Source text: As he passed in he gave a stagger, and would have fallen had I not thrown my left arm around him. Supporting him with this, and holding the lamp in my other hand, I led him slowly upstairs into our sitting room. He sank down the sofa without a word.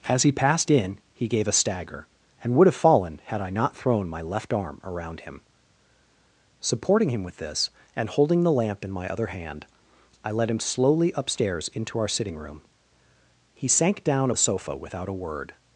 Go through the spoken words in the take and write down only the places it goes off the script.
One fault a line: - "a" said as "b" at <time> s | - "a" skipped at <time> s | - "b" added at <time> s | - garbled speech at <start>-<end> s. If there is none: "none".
none